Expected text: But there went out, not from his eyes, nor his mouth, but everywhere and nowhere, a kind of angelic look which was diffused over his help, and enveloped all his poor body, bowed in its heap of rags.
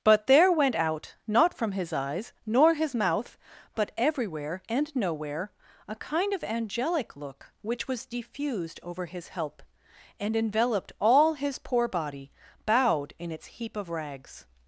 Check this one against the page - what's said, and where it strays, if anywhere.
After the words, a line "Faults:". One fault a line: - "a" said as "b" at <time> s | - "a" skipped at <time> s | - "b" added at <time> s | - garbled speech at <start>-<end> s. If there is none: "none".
But there went out, not from his eyes, nor his mouth, but everywhere and nowhere, a kind of angelic look which was diffused over his help, and enveloped all his poor body, bowed in its heap of rags.
Faults:
none